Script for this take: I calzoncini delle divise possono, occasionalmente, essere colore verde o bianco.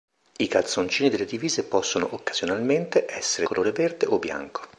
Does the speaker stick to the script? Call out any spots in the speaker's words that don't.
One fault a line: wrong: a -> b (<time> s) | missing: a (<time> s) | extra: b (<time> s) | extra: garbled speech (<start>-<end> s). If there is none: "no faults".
no faults